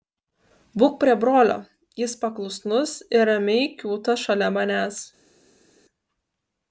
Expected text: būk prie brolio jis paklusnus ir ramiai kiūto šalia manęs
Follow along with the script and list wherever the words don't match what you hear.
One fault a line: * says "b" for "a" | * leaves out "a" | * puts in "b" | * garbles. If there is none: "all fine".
all fine